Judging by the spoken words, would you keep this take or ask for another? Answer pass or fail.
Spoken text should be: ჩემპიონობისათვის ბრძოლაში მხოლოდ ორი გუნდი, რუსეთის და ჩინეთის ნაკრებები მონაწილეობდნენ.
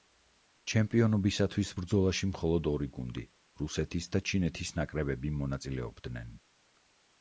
pass